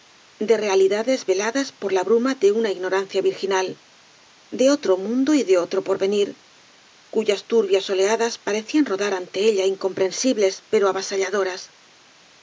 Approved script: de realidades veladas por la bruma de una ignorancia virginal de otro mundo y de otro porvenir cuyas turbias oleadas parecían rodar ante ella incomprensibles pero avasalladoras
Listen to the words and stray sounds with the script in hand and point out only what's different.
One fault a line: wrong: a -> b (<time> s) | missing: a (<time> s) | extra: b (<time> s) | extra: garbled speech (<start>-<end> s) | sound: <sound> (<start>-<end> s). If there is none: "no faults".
no faults